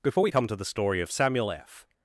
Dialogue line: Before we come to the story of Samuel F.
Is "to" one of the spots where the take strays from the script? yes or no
no